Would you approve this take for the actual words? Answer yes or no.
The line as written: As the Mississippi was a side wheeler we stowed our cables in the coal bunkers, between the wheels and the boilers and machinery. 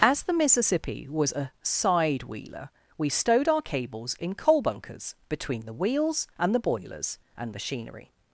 no